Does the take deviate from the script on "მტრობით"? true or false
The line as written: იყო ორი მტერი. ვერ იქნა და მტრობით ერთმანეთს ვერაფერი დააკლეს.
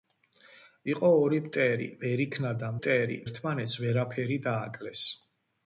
true